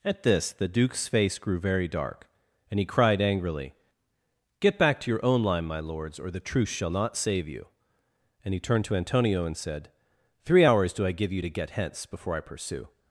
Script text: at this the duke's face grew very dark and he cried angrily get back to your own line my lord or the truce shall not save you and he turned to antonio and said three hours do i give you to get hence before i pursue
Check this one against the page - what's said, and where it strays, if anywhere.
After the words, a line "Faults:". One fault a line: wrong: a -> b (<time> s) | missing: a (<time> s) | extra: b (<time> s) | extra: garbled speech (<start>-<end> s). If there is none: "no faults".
at this the duke's face grew very dark and he cried angrily get back to your own line my lords or the truce shall not save you and he turned to antonio and said three hours do i give you to get hence before i pursue
Faults:
wrong: lord -> lords (5.8 s)